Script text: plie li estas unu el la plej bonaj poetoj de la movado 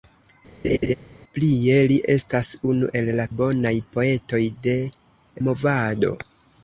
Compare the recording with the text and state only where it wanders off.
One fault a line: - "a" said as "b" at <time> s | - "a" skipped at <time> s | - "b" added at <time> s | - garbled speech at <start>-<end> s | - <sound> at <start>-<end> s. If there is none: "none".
- laugh at 0.6-0.9 s
- "plej" skipped at 3.3 s
- "la" skipped at 4.8 s